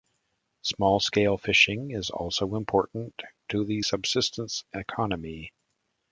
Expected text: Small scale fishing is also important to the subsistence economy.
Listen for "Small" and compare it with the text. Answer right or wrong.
right